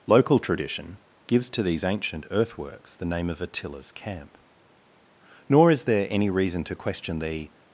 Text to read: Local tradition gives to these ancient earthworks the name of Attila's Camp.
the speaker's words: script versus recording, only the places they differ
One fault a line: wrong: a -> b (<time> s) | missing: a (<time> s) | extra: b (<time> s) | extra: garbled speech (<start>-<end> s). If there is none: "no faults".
extra: Nor is there any reason to question the (5.5 s)